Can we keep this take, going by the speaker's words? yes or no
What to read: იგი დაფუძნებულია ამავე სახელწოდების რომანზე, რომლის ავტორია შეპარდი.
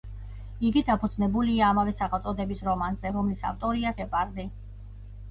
yes